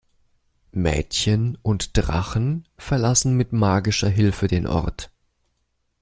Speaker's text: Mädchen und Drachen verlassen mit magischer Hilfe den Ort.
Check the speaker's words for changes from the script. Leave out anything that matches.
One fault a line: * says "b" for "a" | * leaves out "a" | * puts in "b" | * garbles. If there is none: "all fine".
all fine